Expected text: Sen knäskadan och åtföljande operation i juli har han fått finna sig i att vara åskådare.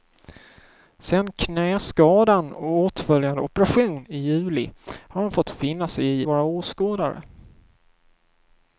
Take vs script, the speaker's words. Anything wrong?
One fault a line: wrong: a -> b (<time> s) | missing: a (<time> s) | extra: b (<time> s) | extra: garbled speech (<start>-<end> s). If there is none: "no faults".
missing: att (6.3 s)